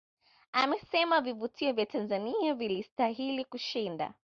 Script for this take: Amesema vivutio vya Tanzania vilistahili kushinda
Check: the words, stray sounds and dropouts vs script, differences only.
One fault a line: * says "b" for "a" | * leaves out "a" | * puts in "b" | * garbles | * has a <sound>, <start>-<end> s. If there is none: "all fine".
all fine